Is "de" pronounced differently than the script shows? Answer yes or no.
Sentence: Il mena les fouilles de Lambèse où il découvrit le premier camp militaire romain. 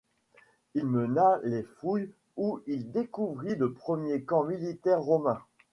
yes